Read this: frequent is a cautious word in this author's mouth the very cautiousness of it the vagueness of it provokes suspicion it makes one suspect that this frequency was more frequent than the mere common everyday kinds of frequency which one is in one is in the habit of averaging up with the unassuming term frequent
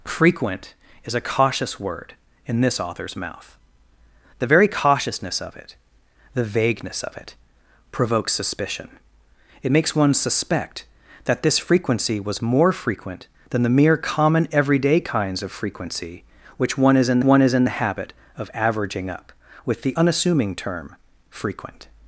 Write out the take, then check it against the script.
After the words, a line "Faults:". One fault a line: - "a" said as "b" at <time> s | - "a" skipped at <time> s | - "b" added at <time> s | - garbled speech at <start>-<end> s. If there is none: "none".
frequent is a cautious word in this author's mouth the very cautiousness of it the vagueness of it provokes suspicion it makes one suspect that this frequency was more frequent than the mere common everyday kinds of frequency which one is in one is in the habit of averaging up with the unassuming term frequent
Faults:
none